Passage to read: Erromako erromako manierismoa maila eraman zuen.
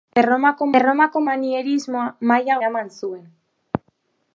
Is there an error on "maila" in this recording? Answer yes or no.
no